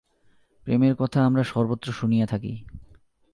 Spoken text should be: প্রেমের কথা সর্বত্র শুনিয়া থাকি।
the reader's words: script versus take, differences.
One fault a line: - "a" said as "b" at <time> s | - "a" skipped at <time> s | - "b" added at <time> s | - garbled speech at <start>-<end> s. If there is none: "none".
- "আমরা" added at 1.2 s